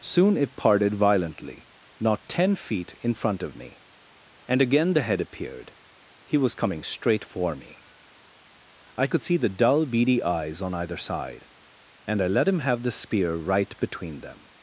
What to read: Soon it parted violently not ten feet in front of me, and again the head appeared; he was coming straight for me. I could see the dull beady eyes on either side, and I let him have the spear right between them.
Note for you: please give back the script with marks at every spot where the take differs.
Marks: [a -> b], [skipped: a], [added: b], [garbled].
Soon it parted violently not ten feet in front of me, and again the head appeared; he was coming straight for me. I could see the dull beady eyes on either side, and I let him have the spear right between them.